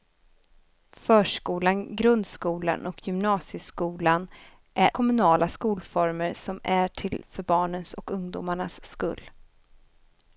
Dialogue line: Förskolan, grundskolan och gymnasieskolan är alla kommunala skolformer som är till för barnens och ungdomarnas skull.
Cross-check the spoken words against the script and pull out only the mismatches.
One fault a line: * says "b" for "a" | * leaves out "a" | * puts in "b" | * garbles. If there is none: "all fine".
* leaves out "alla"